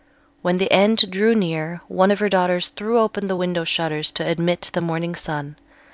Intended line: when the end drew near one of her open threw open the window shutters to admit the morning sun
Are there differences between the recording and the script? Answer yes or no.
yes